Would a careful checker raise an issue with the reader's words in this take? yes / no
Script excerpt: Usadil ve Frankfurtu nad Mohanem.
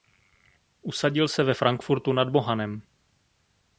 yes